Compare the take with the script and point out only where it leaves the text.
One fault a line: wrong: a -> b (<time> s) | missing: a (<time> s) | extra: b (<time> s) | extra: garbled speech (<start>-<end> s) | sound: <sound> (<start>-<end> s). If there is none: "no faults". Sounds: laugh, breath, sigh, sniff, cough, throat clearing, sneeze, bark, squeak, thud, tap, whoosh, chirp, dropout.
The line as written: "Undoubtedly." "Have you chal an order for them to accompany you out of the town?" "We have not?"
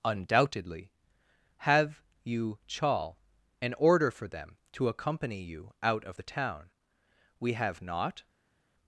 no faults